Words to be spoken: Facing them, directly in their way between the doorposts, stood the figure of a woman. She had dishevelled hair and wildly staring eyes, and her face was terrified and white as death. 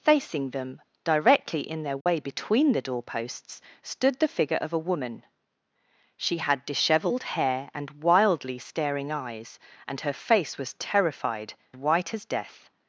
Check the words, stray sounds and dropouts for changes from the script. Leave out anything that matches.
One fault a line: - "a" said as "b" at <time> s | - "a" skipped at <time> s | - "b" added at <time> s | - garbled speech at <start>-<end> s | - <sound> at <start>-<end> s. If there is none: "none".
- dropout at 2.0-2.1 s
- "and" skipped at 11.5 s